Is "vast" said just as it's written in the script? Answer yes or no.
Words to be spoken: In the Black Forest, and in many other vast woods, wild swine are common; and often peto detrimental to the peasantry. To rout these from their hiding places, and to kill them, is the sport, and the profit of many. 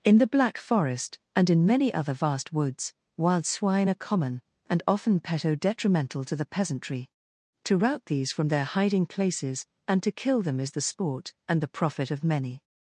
yes